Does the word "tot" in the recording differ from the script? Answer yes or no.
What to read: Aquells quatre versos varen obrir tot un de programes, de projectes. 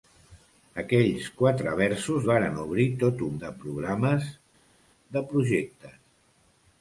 no